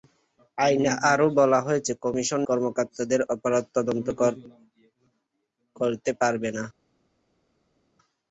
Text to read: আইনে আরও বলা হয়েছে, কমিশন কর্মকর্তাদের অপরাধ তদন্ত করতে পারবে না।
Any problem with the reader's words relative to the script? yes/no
no